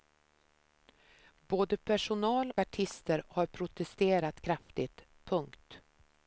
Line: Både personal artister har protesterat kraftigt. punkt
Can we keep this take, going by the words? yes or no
yes